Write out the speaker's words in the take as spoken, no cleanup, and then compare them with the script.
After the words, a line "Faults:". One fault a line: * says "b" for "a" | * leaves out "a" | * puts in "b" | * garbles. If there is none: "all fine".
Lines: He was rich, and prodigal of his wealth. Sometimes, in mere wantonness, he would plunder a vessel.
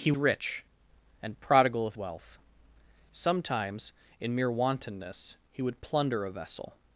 He rich, and prodigal of wealth. Sometimes, in mere wantonness, he would plunder a vessel.
Faults:
* leaves out "was"
* leaves out "his"